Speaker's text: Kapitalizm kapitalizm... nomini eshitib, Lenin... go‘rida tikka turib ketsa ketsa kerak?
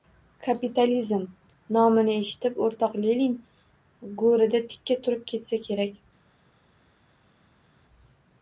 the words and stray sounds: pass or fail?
fail